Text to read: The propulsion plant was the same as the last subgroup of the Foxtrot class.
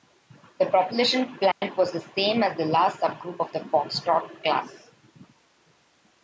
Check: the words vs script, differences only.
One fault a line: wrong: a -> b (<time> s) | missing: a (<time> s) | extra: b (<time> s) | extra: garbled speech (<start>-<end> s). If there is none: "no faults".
no faults